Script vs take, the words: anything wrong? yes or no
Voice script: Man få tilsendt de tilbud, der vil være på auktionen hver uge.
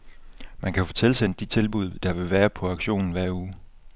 yes